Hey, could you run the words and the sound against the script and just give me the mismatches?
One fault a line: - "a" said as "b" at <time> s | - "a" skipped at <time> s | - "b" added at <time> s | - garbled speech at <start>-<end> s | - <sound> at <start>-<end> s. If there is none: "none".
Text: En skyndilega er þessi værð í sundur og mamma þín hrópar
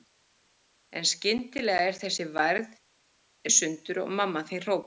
none